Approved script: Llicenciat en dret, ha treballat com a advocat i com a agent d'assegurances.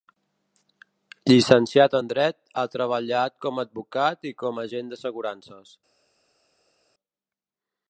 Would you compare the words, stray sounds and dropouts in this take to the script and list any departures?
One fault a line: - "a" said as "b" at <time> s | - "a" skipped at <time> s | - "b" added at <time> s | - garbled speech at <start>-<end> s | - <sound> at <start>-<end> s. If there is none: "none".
none